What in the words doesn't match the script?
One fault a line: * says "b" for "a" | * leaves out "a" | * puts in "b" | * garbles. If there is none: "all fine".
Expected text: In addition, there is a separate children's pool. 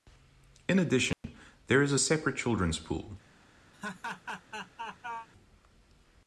all fine